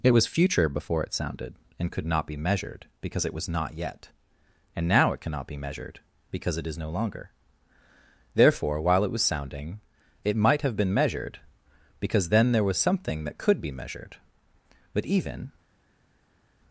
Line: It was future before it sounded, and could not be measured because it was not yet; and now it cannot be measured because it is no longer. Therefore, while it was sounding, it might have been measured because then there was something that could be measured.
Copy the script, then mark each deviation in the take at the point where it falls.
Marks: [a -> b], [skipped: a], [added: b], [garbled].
It was future before it sounded, and could not be measured because it was not yet; and now it cannot be measured because it is no longer. Therefore, while it was sounding, it might have been measured because then there was something that could be measured. [added: But even]